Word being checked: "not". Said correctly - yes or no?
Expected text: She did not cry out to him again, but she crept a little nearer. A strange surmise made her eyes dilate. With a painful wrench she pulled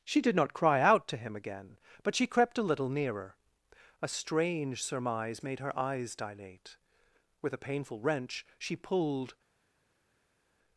yes